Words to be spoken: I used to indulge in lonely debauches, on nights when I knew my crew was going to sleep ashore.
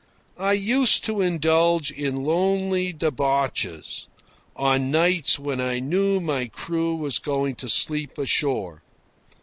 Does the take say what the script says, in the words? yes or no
yes